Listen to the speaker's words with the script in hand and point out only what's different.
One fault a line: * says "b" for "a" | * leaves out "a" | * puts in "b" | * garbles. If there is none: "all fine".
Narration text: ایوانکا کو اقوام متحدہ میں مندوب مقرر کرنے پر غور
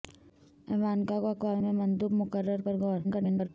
* leaves out "متحدہ"
* leaves out "کرنے"
* garbles